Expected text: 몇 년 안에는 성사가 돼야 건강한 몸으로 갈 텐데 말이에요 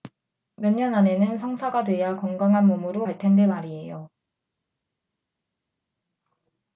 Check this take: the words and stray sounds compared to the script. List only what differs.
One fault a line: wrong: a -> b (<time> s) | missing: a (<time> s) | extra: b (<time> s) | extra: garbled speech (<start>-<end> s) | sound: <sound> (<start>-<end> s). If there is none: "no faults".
no faults